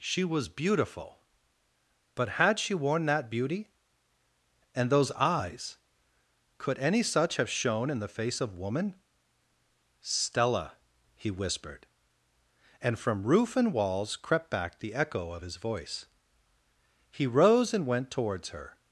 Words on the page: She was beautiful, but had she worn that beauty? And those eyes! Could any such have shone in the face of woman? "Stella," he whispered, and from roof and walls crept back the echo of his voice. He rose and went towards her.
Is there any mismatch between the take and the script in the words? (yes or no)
no